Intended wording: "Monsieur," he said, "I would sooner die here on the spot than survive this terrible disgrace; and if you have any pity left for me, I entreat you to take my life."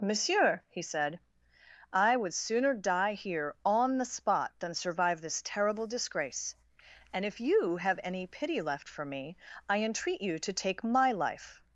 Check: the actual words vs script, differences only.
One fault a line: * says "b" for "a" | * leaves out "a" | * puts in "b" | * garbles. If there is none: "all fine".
all fine